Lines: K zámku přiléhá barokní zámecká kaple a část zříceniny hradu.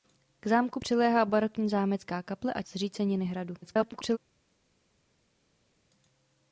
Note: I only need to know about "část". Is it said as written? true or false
false